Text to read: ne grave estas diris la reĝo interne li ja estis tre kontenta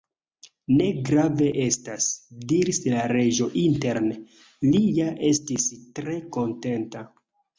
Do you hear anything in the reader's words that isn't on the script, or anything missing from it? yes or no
no